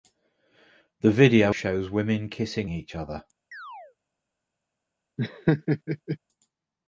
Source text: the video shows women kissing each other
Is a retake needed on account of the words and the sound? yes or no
yes